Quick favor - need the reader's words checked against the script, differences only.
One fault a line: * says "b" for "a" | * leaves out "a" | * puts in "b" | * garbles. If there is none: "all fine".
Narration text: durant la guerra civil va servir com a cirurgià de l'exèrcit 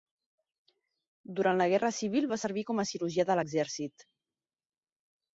all fine